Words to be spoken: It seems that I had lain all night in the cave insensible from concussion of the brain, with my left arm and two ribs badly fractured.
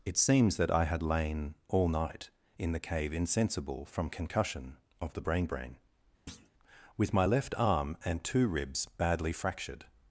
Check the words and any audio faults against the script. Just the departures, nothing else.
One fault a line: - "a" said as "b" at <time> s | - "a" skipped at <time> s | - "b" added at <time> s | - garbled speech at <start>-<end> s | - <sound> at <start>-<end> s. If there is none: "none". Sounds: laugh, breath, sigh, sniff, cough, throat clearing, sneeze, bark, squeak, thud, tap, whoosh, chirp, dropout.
- "brain" added at 5.5 s
- thud at 6.3-6.5 s